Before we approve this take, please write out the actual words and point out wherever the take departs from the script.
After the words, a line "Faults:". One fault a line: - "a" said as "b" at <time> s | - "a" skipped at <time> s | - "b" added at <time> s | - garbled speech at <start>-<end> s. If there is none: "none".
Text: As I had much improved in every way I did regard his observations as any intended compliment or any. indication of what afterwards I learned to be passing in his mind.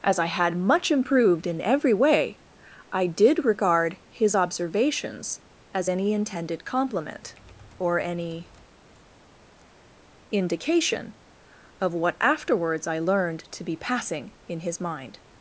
As I had much improved in every way I did regard his observations as any intended compliment or any. indication of what afterwards I learned to be passing in his mind.
Faults:
none